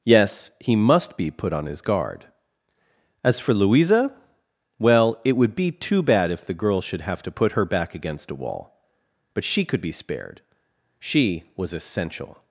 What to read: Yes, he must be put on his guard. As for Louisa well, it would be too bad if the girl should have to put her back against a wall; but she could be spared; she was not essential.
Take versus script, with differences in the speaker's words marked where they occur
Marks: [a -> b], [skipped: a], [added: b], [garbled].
Yes, he must be put on his guard. As for Louisa well, it would be too bad if the girl should have to put her back against a wall; but she could be spared; she was [skipped: not] essential.